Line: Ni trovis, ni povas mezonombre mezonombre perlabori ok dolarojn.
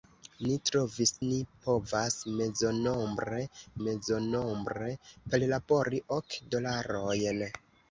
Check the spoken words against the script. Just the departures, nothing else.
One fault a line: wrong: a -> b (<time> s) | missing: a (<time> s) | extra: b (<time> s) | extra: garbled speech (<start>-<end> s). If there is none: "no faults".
no faults